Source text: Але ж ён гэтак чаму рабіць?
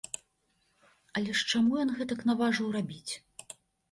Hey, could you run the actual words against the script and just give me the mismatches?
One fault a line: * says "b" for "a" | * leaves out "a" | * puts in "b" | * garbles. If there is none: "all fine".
* puts in "чаму"
* says "наважыў" for "чаму"